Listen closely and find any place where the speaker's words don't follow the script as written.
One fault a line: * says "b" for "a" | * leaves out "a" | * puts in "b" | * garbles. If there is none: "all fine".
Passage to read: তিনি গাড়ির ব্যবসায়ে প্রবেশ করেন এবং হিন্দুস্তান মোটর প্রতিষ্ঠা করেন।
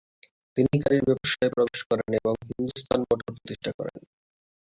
all fine